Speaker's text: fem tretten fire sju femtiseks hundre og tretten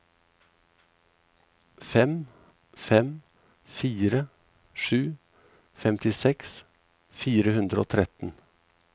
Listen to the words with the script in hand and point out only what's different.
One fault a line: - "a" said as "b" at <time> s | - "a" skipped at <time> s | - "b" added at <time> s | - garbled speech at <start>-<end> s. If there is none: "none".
- "tretten" said as "fem" at 2.8 s
- "fire" added at 7.2 s